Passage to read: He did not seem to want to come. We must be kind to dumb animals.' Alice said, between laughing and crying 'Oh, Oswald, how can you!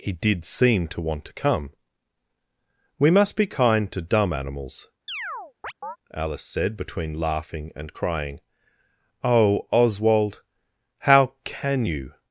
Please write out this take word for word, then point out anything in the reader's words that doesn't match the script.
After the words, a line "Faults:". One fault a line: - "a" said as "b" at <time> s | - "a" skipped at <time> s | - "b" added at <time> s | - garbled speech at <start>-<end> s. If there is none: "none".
He did seem to want to come. We must be kind to dumb animals.' Alice said, between laughing and crying 'Oh, Oswald, how can you!
Faults:
- "not" skipped at 0.5 s